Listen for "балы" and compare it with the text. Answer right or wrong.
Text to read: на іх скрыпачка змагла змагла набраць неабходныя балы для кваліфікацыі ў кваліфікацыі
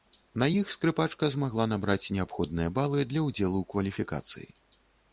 right